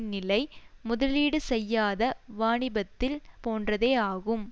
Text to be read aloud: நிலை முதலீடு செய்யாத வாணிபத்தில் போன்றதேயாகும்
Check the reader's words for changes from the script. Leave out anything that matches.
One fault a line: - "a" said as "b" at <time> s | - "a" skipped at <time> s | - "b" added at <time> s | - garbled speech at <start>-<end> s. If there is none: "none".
none